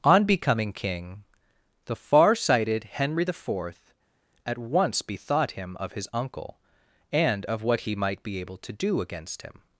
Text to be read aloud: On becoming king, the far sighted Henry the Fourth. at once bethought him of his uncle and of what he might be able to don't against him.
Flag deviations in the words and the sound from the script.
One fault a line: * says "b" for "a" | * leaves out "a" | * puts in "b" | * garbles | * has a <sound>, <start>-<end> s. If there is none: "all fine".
* says "do" for "don't"